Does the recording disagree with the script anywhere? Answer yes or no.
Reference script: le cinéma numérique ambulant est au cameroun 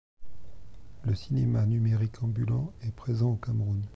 yes